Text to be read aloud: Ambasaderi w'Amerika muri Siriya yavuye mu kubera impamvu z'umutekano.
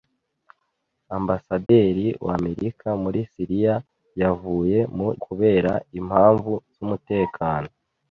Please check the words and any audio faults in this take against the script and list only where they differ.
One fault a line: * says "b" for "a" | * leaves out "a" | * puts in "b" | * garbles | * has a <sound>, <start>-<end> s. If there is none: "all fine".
* has a dropout, 1.7-1.7 s